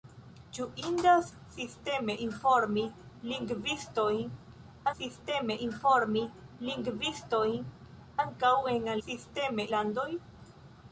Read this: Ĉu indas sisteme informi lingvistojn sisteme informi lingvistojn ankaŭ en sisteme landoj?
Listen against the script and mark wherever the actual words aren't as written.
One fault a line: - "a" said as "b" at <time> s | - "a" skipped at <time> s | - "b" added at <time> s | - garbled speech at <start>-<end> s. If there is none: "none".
none